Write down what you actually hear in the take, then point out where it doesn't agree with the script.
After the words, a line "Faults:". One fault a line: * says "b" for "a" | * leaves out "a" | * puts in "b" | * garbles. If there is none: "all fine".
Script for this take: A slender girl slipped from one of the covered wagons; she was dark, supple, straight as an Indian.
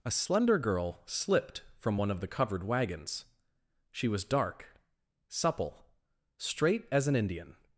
A slender girl slipped from one of the covered wagons; she was dark, supple, straight as an Indian.
Faults:
all fine